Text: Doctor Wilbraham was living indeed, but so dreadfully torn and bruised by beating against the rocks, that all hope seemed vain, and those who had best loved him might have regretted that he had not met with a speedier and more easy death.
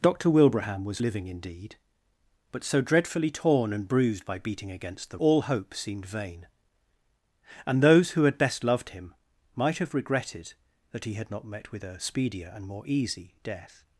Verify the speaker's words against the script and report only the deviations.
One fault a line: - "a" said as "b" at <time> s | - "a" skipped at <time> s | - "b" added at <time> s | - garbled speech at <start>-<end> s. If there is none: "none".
- "rocks that" skipped at 5.2 s